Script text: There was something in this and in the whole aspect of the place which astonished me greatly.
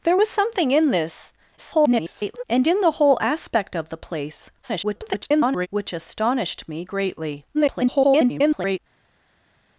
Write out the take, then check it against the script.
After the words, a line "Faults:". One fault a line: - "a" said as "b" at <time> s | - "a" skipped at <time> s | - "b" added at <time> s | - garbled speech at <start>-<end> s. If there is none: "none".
There was something in this [garbled] and in the whole aspect of the place [garbled] which astonished me greatly. [garbled]
Faults:
- garbled speech at 1.6-2.4 s
- garbled speech at 4.6-5.7 s
- garbled speech at 7.5-8.8 s